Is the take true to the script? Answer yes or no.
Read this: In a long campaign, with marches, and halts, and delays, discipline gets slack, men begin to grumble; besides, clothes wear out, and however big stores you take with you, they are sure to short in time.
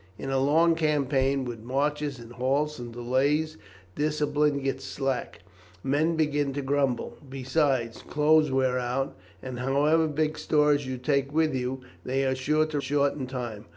yes